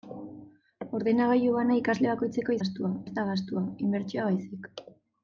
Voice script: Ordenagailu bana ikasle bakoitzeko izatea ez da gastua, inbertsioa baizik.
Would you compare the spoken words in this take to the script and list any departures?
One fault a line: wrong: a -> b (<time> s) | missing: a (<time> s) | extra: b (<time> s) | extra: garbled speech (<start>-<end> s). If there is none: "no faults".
wrong: izatea -> gastua (2.6 s)